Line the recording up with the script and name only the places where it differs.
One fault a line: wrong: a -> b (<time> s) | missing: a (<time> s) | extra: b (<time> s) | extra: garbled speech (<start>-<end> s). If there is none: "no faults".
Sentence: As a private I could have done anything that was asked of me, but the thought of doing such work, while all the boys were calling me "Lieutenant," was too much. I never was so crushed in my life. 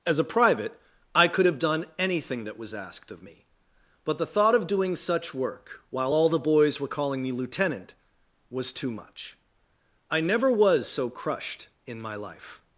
no faults